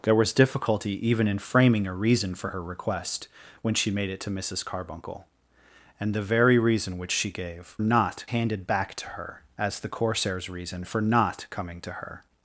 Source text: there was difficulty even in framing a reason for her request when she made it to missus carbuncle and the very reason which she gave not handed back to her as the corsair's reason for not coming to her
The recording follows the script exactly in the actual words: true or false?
true